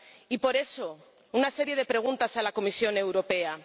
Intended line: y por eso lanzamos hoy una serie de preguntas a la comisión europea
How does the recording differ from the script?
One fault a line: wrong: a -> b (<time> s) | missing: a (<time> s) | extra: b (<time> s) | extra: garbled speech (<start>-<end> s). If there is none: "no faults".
missing: lanzamos hoy (1.0 s)